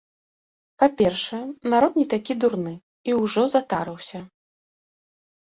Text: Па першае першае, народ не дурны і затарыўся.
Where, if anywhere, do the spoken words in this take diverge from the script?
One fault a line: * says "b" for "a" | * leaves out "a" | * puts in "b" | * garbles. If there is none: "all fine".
* leaves out "першае"
* puts in "такі"
* puts in "ўжо"